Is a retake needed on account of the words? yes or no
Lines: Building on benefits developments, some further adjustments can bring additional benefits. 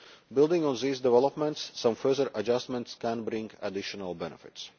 yes